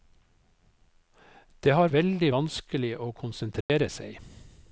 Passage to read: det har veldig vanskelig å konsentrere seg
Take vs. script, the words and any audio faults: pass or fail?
fail